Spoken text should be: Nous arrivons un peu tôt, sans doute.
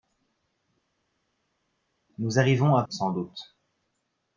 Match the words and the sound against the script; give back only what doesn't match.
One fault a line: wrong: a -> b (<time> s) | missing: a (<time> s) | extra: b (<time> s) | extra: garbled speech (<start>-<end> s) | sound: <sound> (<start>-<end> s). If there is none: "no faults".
missing: peu tôt (2.8 s)